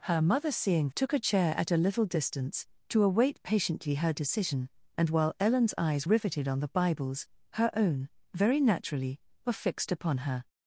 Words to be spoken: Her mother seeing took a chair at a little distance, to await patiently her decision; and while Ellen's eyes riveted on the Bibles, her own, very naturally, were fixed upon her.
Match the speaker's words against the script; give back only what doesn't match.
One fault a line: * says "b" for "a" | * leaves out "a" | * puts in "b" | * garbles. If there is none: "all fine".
all fine